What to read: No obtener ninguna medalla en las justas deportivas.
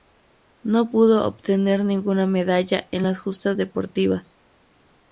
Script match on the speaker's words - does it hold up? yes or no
no